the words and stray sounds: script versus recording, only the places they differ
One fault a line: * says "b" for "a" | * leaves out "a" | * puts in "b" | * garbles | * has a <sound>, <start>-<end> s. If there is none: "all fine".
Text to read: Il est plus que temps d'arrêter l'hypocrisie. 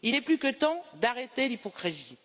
all fine